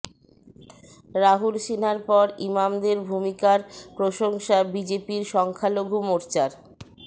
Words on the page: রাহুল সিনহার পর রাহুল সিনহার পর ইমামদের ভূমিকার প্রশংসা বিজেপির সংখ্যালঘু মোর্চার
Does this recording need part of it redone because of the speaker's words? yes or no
yes